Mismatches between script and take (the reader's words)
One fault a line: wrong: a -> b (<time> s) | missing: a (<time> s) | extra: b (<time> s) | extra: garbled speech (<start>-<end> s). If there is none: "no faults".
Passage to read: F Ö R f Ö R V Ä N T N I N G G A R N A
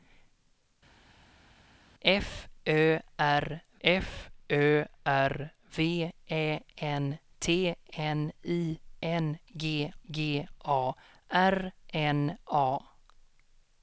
no faults